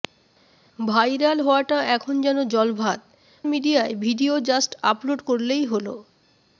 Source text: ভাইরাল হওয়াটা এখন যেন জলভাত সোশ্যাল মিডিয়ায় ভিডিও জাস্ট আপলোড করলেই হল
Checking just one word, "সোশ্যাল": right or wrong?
wrong